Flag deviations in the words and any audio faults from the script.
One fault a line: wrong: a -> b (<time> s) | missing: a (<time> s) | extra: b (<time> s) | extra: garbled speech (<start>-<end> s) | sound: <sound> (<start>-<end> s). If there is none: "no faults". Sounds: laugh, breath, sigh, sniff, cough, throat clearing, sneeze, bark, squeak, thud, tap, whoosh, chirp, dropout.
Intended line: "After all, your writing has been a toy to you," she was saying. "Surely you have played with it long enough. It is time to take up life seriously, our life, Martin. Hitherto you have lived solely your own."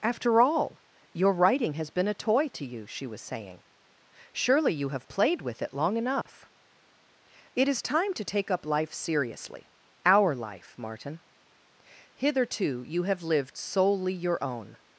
sound: dropout (6.2-6.3 s)